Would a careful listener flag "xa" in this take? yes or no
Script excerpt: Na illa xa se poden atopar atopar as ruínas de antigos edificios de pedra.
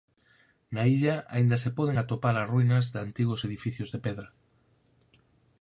yes